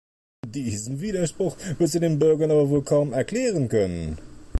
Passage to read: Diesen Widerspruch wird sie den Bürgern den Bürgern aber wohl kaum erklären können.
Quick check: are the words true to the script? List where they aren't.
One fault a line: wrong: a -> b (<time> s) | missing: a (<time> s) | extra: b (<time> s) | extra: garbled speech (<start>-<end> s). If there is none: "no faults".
missing: den Bürgern (2.5 s)